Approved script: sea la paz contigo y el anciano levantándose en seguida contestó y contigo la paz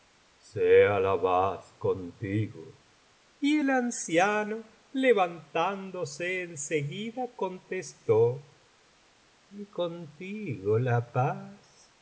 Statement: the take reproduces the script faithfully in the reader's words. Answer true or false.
true